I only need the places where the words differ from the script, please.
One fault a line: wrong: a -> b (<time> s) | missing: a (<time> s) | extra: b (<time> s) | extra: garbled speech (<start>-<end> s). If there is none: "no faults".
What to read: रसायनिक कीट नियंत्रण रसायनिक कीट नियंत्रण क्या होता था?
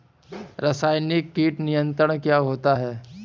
missing: रसायनिक कीट नियंत्रण (2.2 s)
wrong: था -> है (2.7 s)